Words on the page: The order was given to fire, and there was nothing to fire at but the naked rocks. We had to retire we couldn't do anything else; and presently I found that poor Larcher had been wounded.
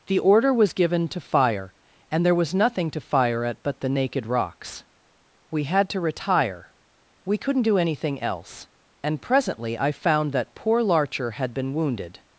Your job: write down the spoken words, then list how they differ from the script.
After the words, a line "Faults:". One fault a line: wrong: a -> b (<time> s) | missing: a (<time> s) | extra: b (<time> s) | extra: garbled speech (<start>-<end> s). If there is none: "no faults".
The order was given to fire, and there was nothing to fire at but the naked rocks. We had to retire we couldn't do anything else; and presently I found that poor Larcher had been wounded.
Faults:
no faults